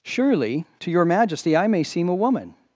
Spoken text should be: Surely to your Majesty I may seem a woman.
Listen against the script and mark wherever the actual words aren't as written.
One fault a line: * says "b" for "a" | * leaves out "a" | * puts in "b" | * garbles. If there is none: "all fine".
all fine